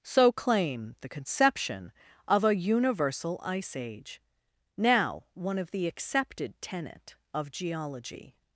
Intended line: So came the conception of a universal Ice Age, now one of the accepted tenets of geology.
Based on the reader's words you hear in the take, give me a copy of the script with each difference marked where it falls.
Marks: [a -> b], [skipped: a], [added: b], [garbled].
So [came -> claim] the conception of a universal Ice Age, now one of the accepted [tenets -> tenet] of geology.